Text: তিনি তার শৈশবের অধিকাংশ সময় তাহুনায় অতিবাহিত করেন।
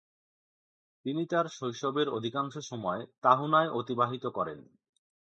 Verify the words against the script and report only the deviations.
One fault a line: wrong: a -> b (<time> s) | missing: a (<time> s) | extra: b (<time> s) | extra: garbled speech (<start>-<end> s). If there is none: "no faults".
no faults